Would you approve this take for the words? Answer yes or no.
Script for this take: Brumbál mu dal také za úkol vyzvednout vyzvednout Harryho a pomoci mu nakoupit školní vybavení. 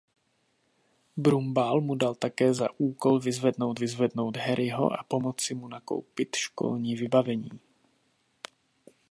yes